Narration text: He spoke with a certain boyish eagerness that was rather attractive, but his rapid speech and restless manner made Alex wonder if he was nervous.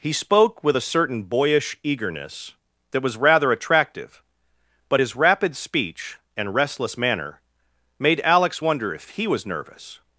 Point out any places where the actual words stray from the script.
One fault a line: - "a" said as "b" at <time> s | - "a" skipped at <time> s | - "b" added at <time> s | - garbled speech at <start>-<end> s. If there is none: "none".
none